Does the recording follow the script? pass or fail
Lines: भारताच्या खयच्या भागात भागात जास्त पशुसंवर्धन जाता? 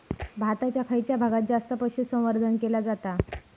fail